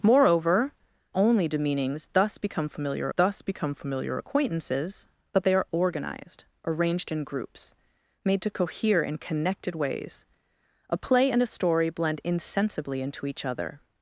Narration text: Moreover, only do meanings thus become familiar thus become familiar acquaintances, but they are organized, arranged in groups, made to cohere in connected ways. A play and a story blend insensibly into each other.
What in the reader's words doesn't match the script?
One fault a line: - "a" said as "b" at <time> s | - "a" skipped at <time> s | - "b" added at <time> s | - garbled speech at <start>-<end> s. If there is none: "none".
none